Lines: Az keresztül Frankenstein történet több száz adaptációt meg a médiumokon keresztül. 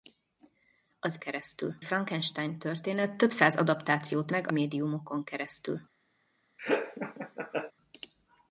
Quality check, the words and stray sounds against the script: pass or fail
fail